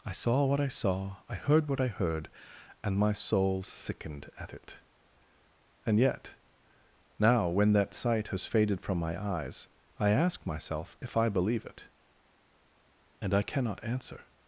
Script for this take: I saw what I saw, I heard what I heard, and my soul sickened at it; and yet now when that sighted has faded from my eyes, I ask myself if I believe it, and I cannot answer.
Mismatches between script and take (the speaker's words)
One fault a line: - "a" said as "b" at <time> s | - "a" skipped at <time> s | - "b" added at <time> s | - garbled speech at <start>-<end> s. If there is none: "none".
- "sighted" said as "sight" at 7.9 s